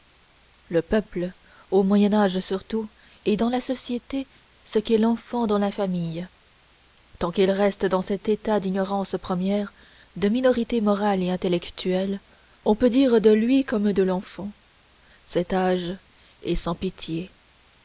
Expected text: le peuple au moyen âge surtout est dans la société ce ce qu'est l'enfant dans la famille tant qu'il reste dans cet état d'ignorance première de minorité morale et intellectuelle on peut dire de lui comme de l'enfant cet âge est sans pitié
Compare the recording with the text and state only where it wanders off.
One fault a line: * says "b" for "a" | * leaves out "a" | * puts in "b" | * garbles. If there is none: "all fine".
* leaves out "ce"